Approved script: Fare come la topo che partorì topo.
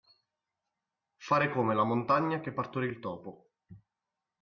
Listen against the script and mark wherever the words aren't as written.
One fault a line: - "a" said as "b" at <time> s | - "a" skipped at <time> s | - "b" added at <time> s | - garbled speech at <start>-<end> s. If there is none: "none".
- "topo" said as "montagna" at 1.8 s
- "il" added at 2.9 s